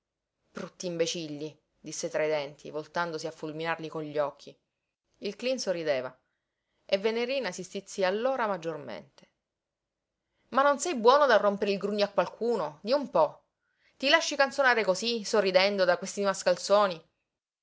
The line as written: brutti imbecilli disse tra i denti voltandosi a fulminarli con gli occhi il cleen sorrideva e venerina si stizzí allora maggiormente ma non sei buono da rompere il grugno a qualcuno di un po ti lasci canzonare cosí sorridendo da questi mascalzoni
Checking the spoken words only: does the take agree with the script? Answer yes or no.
yes